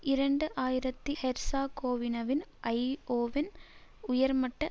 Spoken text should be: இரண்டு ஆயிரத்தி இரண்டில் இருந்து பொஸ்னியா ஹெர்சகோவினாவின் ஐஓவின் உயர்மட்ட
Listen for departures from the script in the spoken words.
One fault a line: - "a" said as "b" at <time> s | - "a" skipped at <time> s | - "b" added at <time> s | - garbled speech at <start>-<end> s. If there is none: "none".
- "இரண்டில் இருந்து பொஸ்னியா" skipped at 1.1 s